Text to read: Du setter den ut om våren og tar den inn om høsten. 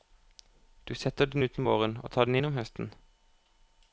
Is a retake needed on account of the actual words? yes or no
no